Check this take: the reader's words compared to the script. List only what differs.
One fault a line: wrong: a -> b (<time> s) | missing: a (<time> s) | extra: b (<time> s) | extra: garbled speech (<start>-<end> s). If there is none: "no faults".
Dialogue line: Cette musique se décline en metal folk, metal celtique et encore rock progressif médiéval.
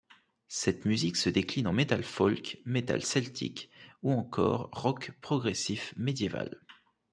wrong: et -> ou (4.0 s)